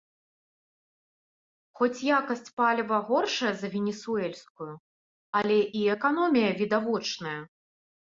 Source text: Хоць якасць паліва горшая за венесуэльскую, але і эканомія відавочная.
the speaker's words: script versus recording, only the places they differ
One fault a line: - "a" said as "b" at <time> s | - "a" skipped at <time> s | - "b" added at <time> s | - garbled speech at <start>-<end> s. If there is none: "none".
none